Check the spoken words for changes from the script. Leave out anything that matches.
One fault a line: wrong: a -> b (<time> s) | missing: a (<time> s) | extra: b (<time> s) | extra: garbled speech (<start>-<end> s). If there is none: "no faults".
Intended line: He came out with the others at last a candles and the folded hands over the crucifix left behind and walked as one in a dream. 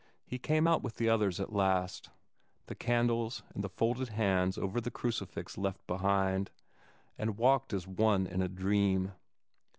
wrong: a -> the (2.7 s)